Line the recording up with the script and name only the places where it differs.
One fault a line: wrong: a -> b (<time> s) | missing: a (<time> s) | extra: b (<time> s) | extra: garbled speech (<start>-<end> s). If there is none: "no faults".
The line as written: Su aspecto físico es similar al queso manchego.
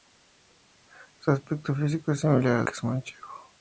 no faults